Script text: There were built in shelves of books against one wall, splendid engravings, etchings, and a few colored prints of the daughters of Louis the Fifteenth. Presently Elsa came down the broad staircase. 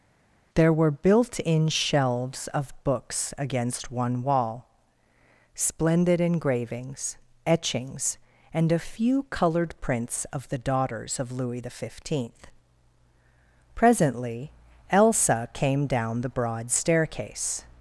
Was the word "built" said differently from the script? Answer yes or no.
no